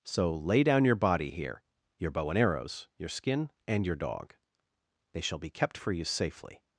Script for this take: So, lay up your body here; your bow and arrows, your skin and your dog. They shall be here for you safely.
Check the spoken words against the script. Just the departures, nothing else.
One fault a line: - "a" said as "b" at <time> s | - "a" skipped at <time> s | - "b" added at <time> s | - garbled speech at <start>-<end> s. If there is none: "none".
- "up" said as "down" at 0.6 s
- "here" said as "kept" at 5.5 s